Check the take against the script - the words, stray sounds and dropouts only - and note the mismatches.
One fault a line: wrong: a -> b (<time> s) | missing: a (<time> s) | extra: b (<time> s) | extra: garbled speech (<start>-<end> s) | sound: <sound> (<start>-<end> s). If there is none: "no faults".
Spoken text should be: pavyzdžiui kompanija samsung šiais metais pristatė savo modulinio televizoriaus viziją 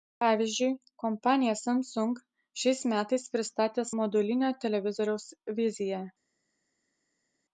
missing: savo (3.9 s)